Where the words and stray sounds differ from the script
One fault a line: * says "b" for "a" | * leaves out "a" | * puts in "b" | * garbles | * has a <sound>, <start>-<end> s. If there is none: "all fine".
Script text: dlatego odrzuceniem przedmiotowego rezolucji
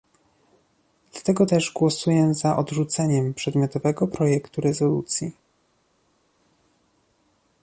* puts in "też głosuję za"
* puts in "projektu"